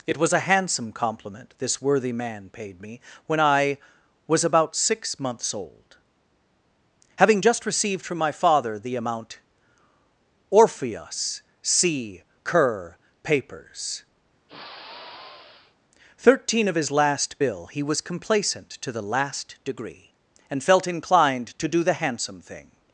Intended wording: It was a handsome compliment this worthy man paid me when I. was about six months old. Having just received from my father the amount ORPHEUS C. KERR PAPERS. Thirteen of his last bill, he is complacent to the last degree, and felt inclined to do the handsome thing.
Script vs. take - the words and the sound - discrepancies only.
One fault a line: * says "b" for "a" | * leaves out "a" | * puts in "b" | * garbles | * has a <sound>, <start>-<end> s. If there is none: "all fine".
* has a sigh, 14.5-15.8 s
* says "was" for "is"